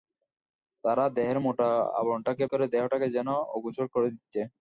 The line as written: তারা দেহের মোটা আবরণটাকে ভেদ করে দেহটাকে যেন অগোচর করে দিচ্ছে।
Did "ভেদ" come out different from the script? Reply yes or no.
yes